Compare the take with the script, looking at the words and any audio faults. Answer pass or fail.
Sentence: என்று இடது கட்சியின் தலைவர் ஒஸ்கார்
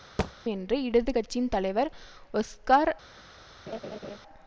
fail